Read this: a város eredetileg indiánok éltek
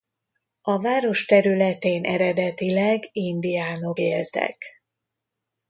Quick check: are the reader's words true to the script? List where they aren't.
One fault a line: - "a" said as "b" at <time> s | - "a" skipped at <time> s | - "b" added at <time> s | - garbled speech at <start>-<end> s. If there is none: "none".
- "területén" added at 1.2 s